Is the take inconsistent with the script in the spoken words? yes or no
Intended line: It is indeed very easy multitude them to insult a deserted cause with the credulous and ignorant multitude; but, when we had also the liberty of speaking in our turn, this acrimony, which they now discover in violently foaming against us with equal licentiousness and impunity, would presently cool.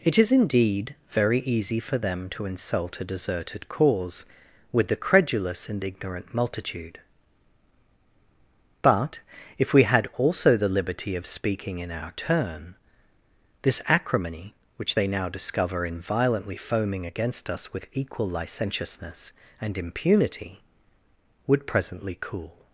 yes